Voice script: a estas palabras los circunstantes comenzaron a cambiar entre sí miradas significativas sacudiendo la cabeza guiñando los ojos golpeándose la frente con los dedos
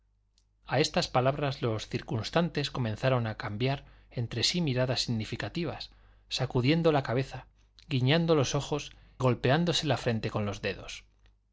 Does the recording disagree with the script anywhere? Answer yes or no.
no